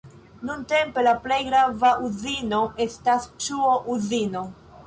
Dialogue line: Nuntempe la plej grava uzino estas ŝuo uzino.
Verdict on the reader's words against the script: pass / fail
pass